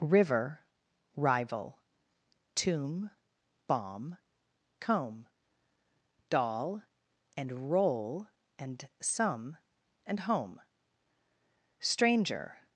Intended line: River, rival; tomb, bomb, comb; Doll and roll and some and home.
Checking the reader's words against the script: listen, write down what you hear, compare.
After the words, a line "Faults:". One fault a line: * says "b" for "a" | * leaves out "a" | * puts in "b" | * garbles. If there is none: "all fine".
River, rival; tomb, bomb, comb; Doll and roll and some and home. Stranger
Faults:
* puts in "Stranger"